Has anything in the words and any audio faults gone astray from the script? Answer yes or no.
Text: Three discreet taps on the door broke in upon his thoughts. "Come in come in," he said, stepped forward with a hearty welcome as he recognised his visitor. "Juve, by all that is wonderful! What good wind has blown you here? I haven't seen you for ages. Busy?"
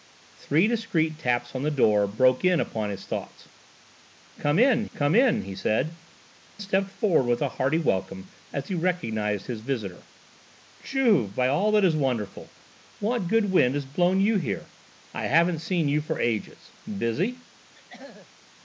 yes